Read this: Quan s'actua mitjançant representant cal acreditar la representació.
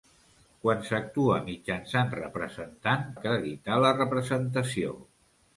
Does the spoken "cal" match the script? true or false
false